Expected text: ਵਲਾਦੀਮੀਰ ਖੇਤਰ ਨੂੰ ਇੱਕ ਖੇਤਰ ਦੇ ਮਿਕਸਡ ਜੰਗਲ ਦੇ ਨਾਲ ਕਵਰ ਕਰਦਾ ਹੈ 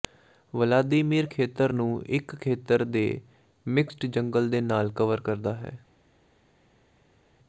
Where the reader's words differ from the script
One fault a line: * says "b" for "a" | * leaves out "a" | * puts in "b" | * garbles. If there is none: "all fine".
all fine